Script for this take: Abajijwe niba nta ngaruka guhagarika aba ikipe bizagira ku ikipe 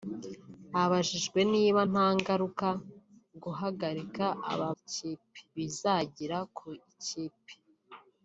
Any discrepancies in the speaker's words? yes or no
no